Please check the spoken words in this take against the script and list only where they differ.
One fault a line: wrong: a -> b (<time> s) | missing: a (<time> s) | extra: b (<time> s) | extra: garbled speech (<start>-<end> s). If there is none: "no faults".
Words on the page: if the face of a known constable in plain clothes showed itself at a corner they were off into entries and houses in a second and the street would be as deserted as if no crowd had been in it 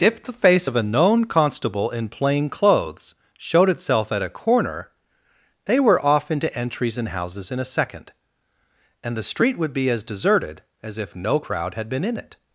no faults